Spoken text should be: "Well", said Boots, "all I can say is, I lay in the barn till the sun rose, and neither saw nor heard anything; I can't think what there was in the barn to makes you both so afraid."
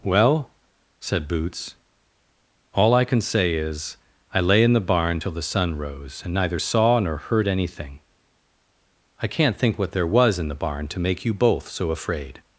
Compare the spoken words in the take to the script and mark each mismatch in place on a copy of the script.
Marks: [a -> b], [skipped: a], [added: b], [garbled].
"Well", said Boots, "all I can say is, I lay in the barn till the sun rose, and neither saw nor heard anything; I can't think what there was in the barn to [makes -> make] you both so afraid."